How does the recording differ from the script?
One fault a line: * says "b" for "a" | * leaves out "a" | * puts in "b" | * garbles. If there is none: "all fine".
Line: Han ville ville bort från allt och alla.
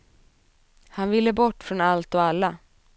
* leaves out "ville"